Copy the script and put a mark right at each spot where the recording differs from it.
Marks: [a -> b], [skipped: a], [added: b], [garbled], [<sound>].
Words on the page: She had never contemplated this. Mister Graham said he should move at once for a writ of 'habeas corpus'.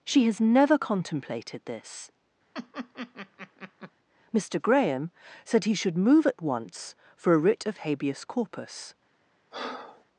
She [had -> has] never contemplated this. [laugh] Mister Graham said he should move at once for a writ of 'habeas corpus'. [breath]